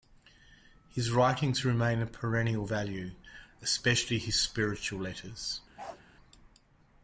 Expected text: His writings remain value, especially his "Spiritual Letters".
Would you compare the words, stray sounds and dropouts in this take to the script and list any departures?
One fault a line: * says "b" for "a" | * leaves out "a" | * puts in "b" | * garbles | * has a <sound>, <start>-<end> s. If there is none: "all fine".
* puts in "of perennial"
* has a bark, 5.8-6.0 s